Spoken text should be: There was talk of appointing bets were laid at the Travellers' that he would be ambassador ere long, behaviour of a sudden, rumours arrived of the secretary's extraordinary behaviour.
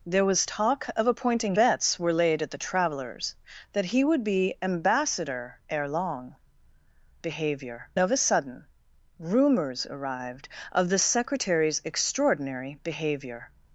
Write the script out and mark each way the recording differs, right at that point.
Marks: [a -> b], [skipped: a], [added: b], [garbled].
There was talk of appointing bets were laid at the Travellers' that he would be ambassador ere long, behaviour of a sudden, rumours arrived of the secretary's extraordinary behaviour.